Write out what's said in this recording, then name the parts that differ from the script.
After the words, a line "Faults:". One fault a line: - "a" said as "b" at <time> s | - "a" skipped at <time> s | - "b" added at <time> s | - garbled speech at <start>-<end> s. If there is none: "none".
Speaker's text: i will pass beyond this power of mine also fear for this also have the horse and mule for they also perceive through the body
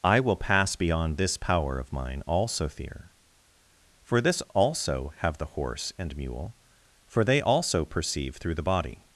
i will pass beyond this power of mine also fear for this also have the horse and mule for they also perceive through the body
Faults:
none